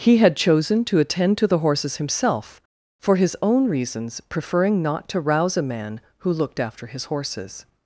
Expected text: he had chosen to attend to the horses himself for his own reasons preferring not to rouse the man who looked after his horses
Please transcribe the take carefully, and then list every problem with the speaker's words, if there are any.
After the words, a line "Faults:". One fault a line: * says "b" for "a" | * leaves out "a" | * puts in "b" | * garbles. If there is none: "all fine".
he had chosen to attend to the horses himself for his own reasons preferring not to rouse a man who looked after his horses
Faults:
* says "a" for "the"